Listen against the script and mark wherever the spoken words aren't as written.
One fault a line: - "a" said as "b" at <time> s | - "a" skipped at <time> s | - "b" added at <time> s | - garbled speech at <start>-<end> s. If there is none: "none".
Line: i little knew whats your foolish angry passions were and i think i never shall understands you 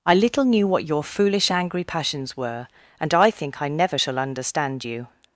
- "whats" said as "what" at 0.7 s
- "understands" said as "understand" at 4.2 s